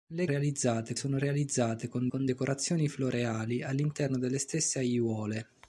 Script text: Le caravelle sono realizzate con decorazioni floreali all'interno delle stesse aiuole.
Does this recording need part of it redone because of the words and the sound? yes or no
yes